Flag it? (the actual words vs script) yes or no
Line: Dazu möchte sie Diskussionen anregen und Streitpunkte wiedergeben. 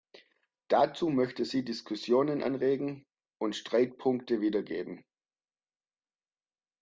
no